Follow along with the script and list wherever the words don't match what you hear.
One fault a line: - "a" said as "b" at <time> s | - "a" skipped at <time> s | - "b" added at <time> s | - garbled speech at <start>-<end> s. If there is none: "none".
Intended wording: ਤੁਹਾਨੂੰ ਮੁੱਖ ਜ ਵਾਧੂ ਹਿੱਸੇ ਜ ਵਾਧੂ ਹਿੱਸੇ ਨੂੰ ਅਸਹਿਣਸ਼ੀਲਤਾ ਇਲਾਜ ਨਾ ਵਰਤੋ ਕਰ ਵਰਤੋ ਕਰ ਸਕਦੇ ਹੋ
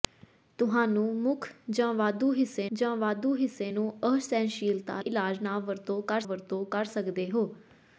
none